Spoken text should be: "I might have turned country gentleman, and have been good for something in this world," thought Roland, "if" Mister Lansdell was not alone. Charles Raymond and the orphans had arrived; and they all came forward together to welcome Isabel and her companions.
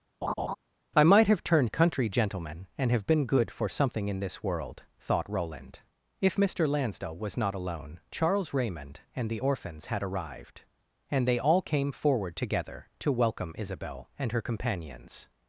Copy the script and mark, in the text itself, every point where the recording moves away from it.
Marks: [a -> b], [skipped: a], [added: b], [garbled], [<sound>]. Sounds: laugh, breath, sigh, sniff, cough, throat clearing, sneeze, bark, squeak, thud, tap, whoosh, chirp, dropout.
[laugh] "I might have turned country gentleman, and have been good for something in this world," thought Roland, "if" Mister Lansdell was not alone. Charles Raymond and the orphans had arrived; and they all came forward together to welcome Isabel and her companions.